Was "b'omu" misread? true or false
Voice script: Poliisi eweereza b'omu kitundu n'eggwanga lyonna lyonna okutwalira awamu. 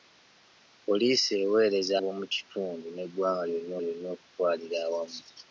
false